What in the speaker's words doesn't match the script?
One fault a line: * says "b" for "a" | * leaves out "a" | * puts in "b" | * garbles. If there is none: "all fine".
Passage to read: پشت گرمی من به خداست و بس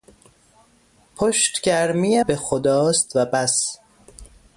* leaves out "من"